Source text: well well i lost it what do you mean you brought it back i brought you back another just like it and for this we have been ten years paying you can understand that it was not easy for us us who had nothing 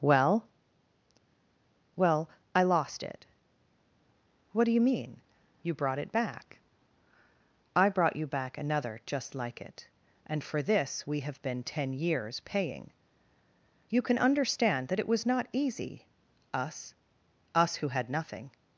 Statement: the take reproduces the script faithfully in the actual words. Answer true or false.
false